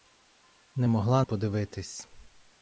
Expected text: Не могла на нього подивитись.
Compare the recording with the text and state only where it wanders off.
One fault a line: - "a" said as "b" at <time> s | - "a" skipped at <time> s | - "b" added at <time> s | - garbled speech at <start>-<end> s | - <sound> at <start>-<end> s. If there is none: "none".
- "на нього" skipped at 1.2 s